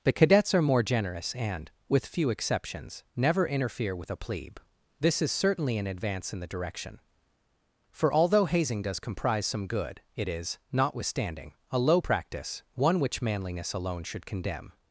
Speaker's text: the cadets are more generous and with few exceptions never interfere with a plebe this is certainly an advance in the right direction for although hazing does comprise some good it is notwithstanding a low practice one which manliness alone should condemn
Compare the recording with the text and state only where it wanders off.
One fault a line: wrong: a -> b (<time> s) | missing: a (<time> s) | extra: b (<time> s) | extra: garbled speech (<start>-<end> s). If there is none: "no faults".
missing: right (6.5 s)